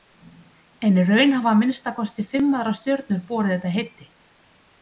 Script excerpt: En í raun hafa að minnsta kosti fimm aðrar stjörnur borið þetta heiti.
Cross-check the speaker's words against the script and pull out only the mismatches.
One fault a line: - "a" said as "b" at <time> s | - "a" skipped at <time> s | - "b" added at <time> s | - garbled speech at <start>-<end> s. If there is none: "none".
none